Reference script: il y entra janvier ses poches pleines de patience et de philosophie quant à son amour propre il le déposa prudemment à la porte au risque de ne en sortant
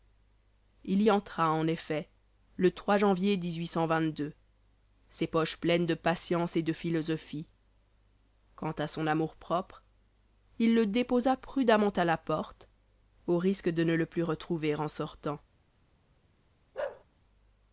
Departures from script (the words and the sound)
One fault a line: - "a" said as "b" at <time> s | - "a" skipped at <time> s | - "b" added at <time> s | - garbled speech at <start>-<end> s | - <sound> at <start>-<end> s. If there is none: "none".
- "en effet le" added at 1.5 s
- "le plus retrouver" added at 13.9 s
- bark at 16.7-17.0 s